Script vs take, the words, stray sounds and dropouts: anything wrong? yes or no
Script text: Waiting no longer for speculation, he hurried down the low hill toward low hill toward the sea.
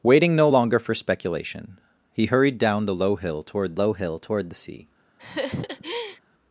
yes